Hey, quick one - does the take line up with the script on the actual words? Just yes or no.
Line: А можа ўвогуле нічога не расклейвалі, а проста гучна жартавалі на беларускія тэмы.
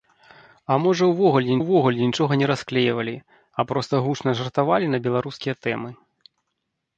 no